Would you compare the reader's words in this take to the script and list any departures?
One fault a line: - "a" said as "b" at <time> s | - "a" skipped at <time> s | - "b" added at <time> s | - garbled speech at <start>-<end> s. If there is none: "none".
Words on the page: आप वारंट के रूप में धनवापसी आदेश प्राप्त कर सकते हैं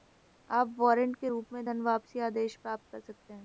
none